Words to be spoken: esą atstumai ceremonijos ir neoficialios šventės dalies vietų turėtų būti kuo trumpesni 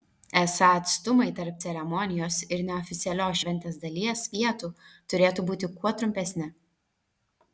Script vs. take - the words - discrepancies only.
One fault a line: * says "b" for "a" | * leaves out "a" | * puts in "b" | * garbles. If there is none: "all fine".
* puts in "tarp"